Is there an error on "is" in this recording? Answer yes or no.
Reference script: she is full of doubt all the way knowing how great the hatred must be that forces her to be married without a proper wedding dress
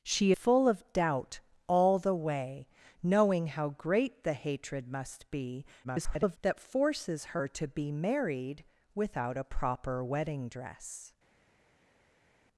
yes